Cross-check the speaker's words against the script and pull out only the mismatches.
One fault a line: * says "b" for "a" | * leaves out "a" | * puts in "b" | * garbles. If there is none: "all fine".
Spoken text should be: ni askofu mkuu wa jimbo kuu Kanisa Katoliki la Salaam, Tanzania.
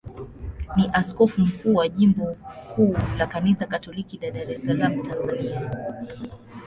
* puts in "la"
* puts in "Dar es"